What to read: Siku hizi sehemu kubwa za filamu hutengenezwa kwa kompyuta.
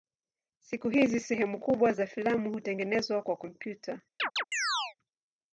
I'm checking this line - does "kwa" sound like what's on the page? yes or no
yes